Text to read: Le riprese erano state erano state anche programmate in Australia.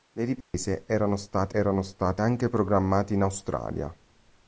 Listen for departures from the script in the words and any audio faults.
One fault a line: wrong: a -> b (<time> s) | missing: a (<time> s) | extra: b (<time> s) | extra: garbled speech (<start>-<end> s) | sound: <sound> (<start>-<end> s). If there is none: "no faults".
sound: dropout (0.4-0.5 s)